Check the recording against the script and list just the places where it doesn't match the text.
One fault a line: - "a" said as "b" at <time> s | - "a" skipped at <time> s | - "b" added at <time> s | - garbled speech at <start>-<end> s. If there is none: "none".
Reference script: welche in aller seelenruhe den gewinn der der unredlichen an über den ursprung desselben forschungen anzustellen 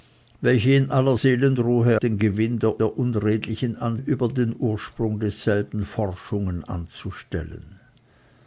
none